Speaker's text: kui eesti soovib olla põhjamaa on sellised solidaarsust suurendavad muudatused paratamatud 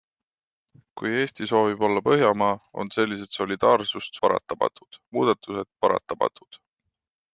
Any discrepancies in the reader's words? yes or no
yes